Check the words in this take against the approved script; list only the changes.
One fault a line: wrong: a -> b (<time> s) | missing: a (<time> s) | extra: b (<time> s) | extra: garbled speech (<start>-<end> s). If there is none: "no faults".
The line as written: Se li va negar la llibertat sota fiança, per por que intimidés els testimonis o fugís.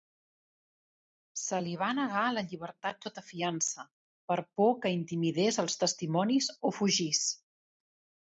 no faults